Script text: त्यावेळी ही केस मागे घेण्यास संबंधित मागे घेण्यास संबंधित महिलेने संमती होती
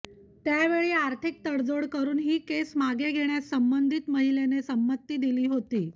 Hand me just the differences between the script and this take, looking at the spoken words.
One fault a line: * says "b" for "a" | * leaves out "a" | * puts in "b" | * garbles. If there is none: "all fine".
* says "आर्थिक तडजोड करून ही केस" for "ही केस मागे घेण्यास संबंधित"
* puts in "दिली"